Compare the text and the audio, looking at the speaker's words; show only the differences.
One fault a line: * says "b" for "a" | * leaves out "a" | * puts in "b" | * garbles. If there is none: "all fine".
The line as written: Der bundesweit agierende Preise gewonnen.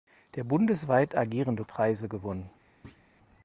all fine